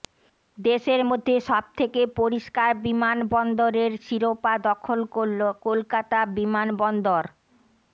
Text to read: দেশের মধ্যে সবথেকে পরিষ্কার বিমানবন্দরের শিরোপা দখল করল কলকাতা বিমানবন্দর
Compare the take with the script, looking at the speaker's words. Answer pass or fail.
pass